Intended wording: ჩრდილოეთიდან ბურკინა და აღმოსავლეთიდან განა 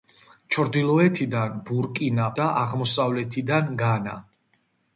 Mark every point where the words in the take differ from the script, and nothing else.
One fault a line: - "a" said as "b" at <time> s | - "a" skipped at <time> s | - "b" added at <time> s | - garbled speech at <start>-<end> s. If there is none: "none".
none